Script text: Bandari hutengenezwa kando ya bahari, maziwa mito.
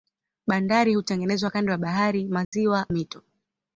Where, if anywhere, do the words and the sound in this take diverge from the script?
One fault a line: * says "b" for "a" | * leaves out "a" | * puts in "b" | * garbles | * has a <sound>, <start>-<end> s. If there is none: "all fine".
* has a dropout, 2.4-2.5 s